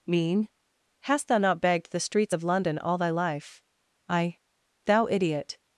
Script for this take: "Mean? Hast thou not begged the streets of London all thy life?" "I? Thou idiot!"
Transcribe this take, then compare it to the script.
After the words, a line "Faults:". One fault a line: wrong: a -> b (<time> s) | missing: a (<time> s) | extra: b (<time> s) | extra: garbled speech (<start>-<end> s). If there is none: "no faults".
"Mean? Hast thou not begged the streets of London all thy life?" "I? Thou idiot!"
Faults:
no faults